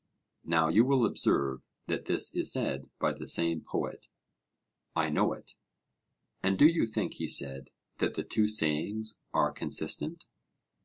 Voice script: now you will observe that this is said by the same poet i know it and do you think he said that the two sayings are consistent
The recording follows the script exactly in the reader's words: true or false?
true